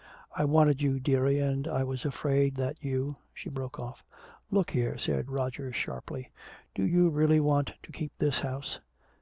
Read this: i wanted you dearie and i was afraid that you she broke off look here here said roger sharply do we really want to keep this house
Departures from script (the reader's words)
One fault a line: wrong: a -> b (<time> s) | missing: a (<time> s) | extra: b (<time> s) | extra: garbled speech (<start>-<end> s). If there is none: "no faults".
missing: here (5.0 s)
wrong: we -> you (6.8 s)